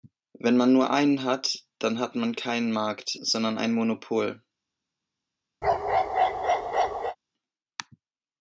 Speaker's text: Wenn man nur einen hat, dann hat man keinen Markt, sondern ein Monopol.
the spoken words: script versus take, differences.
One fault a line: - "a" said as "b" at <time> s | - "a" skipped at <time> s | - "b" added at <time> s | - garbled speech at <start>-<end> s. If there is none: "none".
none